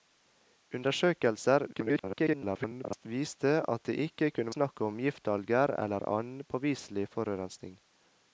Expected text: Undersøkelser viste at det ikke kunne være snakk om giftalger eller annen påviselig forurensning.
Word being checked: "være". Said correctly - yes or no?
no